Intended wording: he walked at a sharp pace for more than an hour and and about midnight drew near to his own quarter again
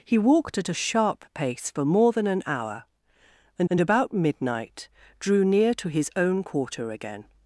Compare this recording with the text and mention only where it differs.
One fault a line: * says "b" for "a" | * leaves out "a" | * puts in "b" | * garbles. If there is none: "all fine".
all fine